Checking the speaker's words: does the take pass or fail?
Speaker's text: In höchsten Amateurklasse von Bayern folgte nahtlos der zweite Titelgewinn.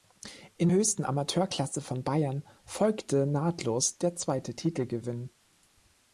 pass